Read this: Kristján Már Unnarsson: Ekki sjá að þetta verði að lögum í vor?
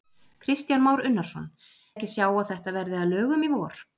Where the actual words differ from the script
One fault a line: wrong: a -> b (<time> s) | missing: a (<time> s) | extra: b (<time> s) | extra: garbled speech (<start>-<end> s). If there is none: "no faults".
no faults